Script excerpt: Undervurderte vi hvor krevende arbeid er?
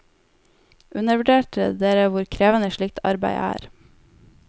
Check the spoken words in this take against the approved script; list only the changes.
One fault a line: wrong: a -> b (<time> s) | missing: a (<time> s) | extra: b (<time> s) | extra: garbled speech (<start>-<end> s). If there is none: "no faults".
wrong: vi -> dere (1.8 s)
extra: slikt (2.8 s)